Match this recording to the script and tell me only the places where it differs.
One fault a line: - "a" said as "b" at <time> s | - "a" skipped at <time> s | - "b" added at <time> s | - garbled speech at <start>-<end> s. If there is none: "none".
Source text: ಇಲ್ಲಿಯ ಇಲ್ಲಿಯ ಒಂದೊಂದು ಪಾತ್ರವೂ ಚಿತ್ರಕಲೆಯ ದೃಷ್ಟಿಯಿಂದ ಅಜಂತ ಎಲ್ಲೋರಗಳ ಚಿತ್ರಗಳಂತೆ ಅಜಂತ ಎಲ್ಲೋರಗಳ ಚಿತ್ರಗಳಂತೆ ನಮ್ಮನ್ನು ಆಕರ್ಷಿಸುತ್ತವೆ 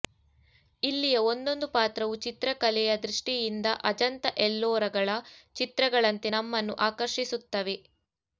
- "ಇಲ್ಲಿಯ" skipped at 1.2 s
- "ಅಜಂತ ಎಲ್ಲೋರಗಳ ಚಿತ್ರಗಳಂತೆ" skipped at 6.3 s